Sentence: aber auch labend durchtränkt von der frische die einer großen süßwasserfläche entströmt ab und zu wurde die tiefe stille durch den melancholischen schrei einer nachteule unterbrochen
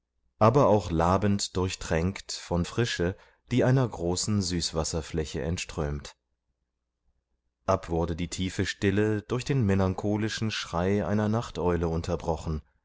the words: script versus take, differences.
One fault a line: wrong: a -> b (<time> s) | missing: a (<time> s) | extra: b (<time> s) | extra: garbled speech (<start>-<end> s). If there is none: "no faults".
missing: der (2.6 s)
missing: und zu (7.9 s)